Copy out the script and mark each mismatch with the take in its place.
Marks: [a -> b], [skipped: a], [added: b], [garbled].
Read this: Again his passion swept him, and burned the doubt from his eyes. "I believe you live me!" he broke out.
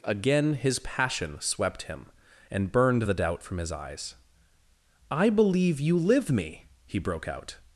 Again his passion swept him, and burned the doubt from his eyes. "I believe you live me!" he broke out.